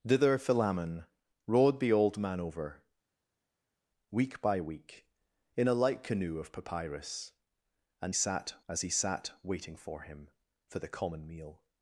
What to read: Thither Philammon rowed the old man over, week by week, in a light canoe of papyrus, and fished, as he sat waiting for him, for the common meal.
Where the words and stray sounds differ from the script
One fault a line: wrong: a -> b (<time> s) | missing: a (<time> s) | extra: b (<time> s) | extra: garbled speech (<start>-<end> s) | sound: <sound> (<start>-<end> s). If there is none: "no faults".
wrong: fished -> sat (8.1 s)